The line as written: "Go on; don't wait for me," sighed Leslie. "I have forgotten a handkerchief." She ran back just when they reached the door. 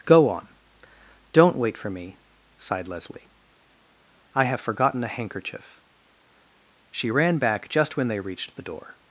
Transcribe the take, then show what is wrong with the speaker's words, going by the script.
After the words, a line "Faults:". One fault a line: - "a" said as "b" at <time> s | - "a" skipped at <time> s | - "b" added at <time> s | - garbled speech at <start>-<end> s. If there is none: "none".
"Go on; don't wait for me," sighed Leslie. "I have forgotten a handkerchief." She ran back just when they reached the door.
Faults:
none